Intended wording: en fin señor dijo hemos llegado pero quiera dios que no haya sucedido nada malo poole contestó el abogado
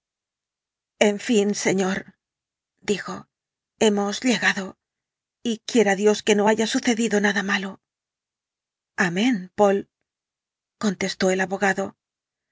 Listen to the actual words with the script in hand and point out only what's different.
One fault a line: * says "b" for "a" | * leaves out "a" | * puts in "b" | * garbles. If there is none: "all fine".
* says "y" for "pero"
* puts in "amén"